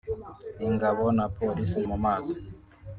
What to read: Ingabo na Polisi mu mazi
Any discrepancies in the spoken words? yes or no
no